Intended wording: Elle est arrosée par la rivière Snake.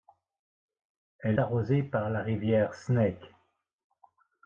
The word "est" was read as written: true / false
false